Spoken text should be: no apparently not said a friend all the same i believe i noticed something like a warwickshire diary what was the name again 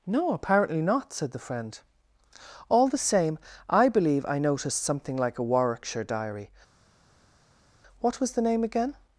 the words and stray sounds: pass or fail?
fail